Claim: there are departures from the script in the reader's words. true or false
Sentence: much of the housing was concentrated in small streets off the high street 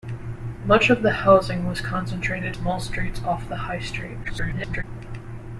true